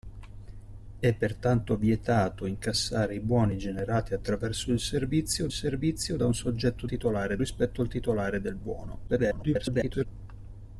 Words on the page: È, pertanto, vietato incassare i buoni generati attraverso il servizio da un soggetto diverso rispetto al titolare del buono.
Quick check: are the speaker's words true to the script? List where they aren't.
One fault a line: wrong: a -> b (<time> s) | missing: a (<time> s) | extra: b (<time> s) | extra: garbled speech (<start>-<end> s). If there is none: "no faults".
extra: servizio (5.5 s)
wrong: diverso -> titolare (6.9 s)
extra: garbled speech (9.1-10.1 s)